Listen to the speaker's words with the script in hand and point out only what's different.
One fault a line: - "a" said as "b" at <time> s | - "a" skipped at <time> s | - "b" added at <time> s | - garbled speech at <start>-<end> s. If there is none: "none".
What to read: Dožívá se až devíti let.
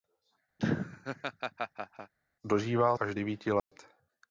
- "se" skipped at 3.0 s